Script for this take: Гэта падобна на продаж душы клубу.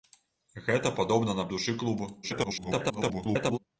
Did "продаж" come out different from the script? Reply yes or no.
yes